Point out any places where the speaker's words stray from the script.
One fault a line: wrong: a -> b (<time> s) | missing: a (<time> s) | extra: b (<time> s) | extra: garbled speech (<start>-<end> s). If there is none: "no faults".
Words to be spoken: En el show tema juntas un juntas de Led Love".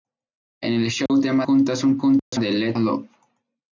no faults